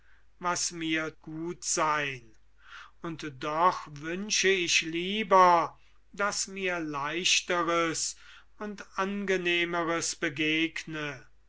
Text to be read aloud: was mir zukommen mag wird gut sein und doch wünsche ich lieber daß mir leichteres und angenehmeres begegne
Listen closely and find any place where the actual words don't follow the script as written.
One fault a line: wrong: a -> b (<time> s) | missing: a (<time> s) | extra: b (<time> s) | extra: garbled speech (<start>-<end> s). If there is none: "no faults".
missing: zukommen mag wird (1.1 s)